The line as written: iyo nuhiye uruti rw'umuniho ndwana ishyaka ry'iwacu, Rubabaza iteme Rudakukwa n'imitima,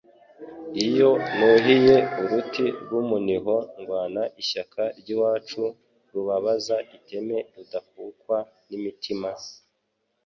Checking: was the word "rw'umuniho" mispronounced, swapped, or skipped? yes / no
no